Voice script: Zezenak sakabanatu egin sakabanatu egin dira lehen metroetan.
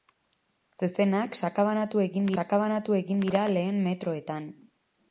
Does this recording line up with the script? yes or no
yes